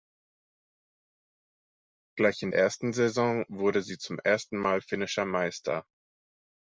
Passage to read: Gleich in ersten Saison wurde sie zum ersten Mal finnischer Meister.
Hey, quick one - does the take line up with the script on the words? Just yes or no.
yes